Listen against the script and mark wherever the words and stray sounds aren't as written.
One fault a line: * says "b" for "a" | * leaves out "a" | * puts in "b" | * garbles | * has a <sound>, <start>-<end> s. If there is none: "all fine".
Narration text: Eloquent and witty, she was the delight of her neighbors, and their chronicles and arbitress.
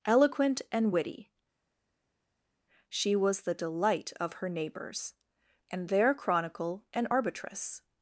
* says "chronicle" for "chronicles"